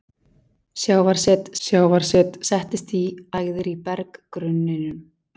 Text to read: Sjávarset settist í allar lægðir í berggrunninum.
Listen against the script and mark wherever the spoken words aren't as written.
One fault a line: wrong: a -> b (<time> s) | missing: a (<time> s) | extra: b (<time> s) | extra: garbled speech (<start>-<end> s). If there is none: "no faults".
extra: sjávarset (1.7 s)
missing: allar (3.0 s)